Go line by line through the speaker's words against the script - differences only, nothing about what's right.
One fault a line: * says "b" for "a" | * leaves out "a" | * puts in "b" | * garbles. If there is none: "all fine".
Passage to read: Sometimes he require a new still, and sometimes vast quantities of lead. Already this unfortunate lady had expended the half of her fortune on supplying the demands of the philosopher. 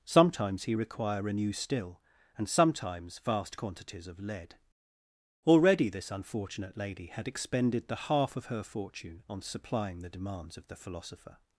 all fine